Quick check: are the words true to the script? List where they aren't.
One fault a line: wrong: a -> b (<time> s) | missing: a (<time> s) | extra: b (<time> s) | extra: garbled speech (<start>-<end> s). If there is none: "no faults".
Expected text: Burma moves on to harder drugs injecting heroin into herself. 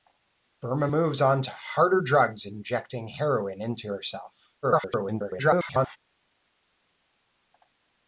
extra: garbled speech (4.6-6.0 s)